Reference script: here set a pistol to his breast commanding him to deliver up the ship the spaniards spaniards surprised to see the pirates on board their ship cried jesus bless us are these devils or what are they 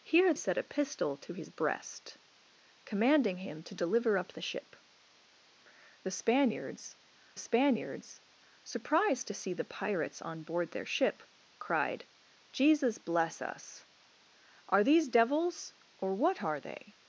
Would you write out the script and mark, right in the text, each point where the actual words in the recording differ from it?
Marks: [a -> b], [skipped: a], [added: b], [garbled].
here set a pistol to his breast commanding him to deliver up the ship the spaniards spaniards surprised to see the pirates on board their ship cried jesus bless us are these devils or what are they